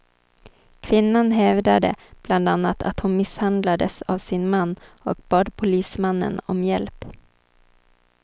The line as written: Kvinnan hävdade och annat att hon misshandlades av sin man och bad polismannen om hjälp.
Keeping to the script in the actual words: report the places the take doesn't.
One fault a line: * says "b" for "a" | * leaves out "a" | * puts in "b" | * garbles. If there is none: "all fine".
* says "bland" for "och"